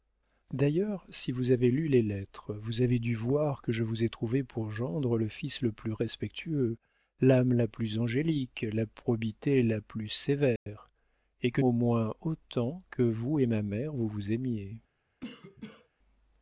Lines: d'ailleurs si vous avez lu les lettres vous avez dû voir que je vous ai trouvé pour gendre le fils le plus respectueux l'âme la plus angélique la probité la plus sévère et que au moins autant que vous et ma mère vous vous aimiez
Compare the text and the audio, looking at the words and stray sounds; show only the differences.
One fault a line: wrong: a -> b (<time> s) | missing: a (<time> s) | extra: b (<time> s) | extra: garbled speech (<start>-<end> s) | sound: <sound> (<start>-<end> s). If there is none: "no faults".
sound: dropout (10.6-10.7 s)
sound: cough (15.2-15.9 s)